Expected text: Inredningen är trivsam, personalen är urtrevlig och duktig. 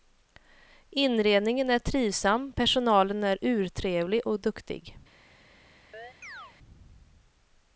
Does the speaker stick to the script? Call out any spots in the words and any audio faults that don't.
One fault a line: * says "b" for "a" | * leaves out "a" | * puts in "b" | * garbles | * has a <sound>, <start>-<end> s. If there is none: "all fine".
* has a chirp, 5.9-6.5 s